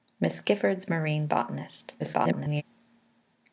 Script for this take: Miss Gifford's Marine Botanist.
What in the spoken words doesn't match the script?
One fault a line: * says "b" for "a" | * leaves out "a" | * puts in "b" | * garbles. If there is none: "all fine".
* garbles